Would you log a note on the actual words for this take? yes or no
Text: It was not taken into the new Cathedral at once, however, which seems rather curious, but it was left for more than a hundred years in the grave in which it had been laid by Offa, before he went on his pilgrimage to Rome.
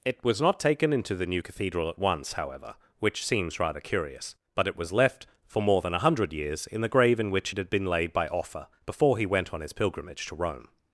no